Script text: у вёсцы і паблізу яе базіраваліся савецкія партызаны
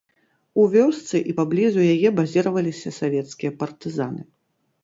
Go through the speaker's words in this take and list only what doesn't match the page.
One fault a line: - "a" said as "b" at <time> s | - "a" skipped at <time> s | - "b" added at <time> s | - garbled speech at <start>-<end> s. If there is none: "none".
none